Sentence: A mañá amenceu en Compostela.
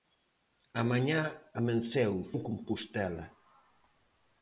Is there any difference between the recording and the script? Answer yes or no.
no